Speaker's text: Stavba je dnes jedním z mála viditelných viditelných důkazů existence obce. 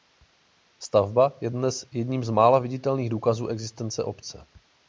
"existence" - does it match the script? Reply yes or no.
yes